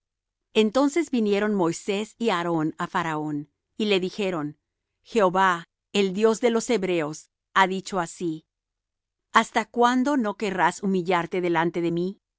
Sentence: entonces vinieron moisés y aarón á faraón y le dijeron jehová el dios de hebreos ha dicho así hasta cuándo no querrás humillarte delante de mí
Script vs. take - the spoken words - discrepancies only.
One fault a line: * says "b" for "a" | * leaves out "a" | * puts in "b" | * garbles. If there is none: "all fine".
* puts in "los"